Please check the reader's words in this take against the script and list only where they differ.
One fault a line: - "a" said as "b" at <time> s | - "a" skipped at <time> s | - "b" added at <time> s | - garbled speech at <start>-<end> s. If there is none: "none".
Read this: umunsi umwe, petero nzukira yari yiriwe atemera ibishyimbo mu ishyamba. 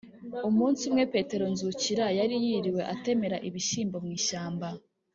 none